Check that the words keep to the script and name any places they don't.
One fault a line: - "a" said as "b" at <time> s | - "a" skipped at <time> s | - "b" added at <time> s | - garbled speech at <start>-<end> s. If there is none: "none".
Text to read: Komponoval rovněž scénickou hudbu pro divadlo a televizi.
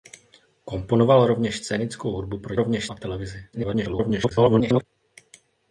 - "divadlo" said as "rovněž" at 2.6 s
- garbled speech at 3.5-4.8 s